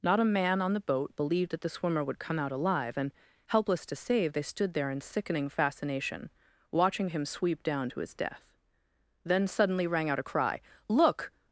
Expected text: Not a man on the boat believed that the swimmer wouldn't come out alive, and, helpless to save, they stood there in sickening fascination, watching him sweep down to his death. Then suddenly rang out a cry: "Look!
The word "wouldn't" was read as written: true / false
false